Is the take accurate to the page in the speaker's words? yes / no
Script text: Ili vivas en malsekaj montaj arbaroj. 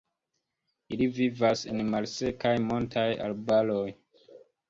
yes